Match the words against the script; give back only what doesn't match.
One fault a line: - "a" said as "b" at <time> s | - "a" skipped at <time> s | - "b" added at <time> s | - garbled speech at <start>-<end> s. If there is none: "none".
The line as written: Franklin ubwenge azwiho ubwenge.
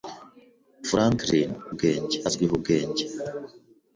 none